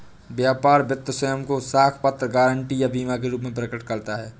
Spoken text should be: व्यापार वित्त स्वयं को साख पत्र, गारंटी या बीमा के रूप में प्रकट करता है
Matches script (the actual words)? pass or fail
pass